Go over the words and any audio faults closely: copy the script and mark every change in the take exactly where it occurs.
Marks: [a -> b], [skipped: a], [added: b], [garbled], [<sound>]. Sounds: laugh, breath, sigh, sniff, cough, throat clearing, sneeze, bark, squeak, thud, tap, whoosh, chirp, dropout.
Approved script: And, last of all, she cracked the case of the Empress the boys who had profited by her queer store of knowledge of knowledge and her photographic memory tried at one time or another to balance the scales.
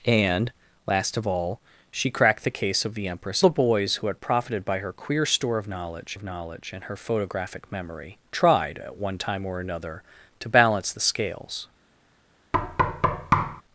And, last of all, she cracked the case of the Empress the boys who had profited by her queer store of knowledge of knowledge and her photographic memory tried at one time or another to balance the scales. [thud]